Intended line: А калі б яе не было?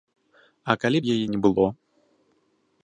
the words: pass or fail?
pass